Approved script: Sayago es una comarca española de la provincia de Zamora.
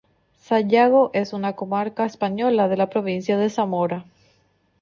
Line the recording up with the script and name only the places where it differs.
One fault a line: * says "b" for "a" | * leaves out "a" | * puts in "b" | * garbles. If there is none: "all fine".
all fine